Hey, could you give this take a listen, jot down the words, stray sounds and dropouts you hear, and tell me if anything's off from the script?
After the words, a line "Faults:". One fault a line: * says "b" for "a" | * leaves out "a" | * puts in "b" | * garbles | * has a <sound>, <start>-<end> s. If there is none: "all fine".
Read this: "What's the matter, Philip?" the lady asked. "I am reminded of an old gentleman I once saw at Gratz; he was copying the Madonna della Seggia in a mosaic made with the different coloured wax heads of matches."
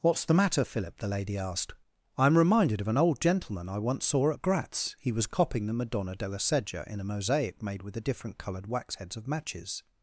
"What's the matter, Philip?" the lady asked. "I am reminded of an old gentleman I once saw at Gratz; he was copying the Madonna della Seggia in a mosaic made with the different coloured wax heads of matches."
Faults:
all fine